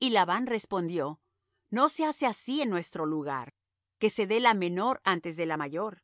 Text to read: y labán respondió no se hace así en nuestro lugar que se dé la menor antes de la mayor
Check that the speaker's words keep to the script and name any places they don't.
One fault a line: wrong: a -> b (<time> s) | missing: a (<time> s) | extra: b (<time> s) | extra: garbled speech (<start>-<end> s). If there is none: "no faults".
no faults